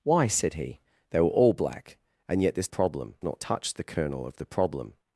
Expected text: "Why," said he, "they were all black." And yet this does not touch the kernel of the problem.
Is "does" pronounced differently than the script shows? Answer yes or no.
yes